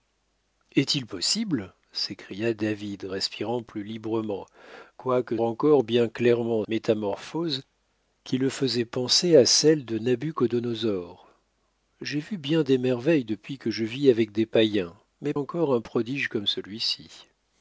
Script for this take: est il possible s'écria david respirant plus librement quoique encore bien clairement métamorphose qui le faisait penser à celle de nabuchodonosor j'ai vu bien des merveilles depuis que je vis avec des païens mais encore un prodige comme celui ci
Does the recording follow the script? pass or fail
pass